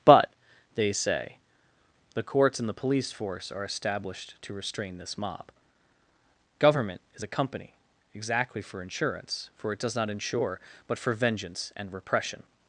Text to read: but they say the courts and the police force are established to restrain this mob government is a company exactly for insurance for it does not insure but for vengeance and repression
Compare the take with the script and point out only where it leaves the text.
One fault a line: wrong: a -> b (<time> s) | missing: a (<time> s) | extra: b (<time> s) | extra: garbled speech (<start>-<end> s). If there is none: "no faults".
no faults